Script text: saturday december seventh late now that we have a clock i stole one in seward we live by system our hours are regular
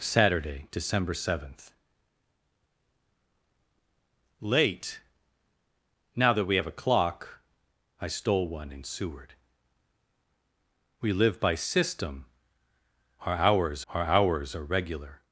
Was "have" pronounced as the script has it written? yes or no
yes